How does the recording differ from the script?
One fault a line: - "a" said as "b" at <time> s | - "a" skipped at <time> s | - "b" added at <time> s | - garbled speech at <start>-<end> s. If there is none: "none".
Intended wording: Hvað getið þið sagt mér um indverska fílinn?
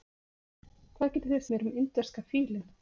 - "sagt" skipped at 1.4 s